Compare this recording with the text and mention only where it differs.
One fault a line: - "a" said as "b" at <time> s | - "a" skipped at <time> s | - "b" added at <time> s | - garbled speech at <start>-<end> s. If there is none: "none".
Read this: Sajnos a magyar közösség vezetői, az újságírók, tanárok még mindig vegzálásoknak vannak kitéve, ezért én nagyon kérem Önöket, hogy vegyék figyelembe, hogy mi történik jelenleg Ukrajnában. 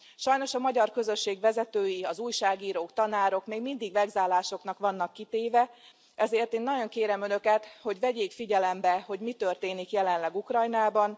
none